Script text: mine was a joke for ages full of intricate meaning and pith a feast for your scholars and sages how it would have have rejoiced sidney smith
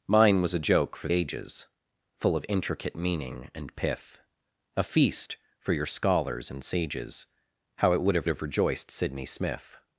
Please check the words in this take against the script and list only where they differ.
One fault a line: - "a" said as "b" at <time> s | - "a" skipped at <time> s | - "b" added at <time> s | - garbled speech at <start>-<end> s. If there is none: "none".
none